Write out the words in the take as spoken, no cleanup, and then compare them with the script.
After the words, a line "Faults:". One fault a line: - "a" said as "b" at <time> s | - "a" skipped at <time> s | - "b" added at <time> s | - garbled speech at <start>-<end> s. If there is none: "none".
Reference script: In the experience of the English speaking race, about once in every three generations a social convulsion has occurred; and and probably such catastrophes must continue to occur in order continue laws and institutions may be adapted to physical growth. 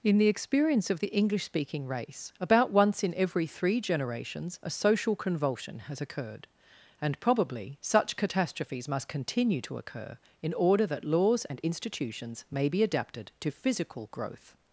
In the experience of the English speaking race, about once in every three generations a social convulsion has occurred; and probably such catastrophes must continue to occur in order that laws and institutions may be adapted to physical growth.
Faults:
- "and" skipped at 7.2 s
- "continue" said as "that" at 10.9 s